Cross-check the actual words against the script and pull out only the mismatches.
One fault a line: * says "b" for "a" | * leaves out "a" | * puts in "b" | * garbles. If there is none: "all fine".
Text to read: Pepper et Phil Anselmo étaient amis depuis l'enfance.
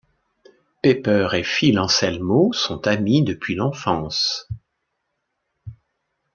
* says "sont" for "étaient"